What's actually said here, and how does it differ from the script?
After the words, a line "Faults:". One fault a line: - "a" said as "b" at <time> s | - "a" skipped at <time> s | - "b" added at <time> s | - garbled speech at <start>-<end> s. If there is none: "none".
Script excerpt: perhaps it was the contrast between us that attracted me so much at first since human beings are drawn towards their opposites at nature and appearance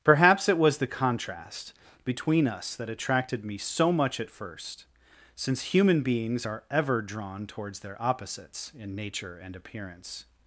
perhaps it was the contrast between us that attracted me so much at first since human beings are ever drawn towards their opposites in nature and appearance
Faults:
- "ever" added at 6.7 s
- "at" said as "in" at 8.8 s